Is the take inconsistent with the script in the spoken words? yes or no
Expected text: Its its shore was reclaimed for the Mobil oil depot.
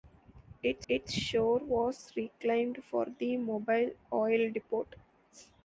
no